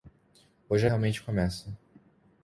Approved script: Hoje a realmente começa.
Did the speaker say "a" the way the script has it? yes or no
yes